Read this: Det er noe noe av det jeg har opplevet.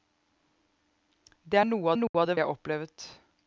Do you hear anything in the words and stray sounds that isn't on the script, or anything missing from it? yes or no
yes